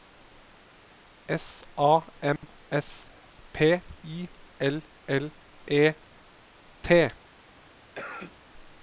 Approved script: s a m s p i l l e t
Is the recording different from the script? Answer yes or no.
no